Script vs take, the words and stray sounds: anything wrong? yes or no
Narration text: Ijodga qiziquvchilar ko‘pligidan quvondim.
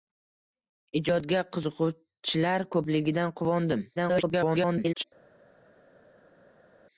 yes